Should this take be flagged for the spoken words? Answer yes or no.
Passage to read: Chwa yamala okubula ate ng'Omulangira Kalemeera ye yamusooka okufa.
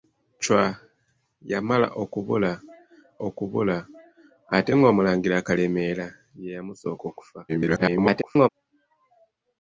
yes